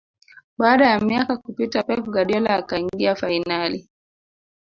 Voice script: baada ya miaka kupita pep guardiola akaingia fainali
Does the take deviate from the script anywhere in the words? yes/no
no